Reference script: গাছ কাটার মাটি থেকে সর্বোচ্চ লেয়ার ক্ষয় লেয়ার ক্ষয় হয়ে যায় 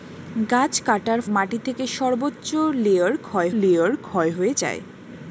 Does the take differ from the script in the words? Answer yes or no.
no